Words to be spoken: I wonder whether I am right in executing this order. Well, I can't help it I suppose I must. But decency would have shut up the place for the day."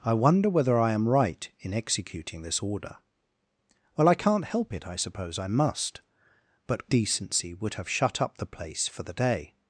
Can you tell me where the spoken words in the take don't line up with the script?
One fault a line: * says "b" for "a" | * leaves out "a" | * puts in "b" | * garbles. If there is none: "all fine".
all fine